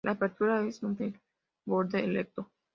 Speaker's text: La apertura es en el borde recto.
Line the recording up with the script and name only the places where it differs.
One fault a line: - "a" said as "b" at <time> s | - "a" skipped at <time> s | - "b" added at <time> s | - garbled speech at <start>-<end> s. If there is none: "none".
none